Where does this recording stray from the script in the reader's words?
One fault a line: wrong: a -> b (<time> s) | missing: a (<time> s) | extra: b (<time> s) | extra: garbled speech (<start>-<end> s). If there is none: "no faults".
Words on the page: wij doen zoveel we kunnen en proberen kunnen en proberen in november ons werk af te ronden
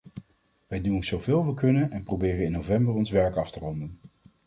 missing: kunnen en proberen (2.4 s)